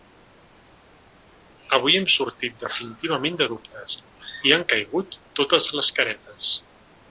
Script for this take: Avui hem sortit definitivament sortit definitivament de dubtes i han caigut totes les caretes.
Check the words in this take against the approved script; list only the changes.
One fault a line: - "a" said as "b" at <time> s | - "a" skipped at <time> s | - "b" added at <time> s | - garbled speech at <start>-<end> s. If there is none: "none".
- "sortit definitivament" skipped at 3.4 s